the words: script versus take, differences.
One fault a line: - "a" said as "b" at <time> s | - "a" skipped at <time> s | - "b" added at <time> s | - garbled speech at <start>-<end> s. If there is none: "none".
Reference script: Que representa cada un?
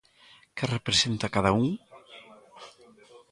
none